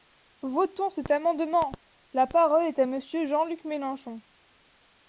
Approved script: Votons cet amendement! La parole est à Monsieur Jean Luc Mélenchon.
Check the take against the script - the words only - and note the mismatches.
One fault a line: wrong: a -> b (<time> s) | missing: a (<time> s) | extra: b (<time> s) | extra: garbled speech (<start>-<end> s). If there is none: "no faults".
no faults